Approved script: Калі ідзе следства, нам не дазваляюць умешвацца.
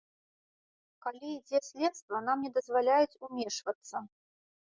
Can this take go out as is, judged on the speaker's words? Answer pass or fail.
pass